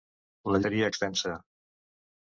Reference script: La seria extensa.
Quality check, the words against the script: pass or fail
pass